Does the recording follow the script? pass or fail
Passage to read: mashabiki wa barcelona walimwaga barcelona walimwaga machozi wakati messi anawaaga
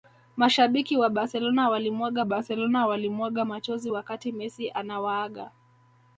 pass